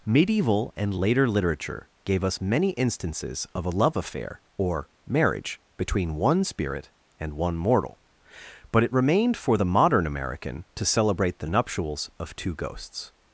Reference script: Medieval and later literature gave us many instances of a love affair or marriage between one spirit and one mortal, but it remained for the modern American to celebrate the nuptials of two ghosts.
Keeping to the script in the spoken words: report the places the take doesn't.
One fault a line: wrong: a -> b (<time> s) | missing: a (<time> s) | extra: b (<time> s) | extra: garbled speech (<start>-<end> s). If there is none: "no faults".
no faults